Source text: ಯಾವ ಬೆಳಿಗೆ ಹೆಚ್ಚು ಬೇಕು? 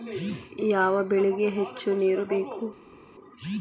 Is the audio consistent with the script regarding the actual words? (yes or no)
no